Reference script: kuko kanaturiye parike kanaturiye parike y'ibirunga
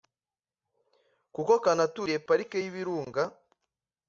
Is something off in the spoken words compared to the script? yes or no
yes